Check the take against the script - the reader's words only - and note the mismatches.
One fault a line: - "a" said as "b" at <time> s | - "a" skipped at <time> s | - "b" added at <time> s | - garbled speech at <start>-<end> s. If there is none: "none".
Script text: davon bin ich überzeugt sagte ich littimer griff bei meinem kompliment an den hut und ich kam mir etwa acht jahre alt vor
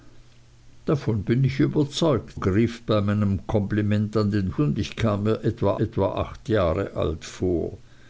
- "sagte ich littimer" skipped at 2.4 s
- "hut" skipped at 4.6 s
- "etwa" added at 5.8 s